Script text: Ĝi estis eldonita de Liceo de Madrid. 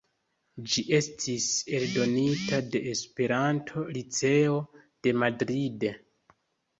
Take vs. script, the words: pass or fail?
fail